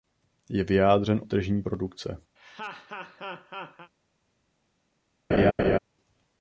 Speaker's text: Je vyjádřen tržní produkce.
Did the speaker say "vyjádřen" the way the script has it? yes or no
yes